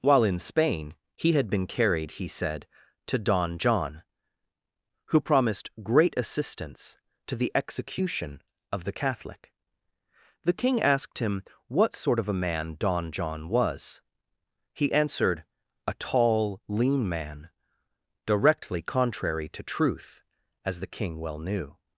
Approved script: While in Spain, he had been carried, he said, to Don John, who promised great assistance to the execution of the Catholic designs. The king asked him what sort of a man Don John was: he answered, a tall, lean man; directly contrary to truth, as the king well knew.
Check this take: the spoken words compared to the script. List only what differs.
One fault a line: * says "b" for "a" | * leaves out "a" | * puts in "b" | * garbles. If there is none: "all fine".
* leaves out "designs"